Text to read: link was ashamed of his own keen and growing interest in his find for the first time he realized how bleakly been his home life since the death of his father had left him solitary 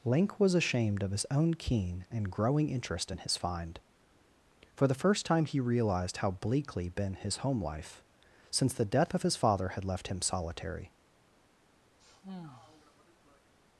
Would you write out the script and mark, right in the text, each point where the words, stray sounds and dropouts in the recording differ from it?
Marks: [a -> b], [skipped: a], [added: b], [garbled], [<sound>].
link was ashamed of his own keen and growing interest in his find for the first time he realized how bleakly been his home life since the death of his father had left him solitary [sigh]